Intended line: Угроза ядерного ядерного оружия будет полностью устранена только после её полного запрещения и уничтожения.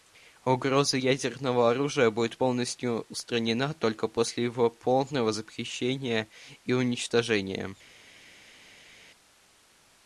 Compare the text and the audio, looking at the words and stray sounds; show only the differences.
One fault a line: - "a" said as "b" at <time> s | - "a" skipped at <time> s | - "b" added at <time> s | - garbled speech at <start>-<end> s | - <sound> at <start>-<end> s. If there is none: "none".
- "ядерного" skipped at 1.7 s
- "её" said as "его" at 4.4 s